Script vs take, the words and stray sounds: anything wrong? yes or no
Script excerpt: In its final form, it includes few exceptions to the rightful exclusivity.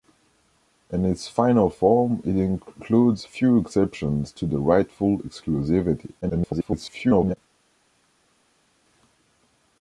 yes